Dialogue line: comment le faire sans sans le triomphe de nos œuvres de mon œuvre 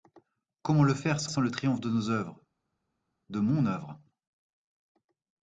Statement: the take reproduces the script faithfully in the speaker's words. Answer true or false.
true